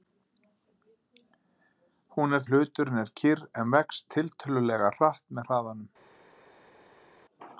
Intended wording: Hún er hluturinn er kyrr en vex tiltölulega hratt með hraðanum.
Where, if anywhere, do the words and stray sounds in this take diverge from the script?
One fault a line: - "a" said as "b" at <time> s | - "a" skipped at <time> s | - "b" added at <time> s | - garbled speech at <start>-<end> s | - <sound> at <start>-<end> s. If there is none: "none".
none